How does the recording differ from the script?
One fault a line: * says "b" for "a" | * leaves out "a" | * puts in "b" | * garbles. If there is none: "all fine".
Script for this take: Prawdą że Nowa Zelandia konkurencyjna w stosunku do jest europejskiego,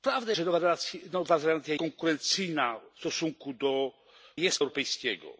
all fine